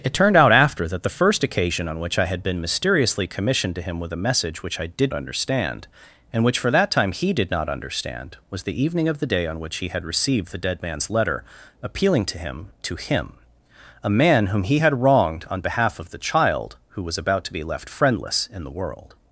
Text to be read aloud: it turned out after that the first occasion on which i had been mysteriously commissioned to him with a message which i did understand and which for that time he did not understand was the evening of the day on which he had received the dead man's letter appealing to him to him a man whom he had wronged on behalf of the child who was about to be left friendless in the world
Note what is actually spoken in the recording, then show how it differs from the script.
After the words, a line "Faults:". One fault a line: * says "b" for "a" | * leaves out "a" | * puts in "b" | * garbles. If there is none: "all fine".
it turned out after that the first occasion on which i had been mysteriously commissioned to him with a message which i did understand and which for that time he did not understand was the evening of the day on which he had received the dead man's letter appealing to him to him a man whom he had wronged on behalf of the child who was about to be left friendless in the world
Faults:
all fine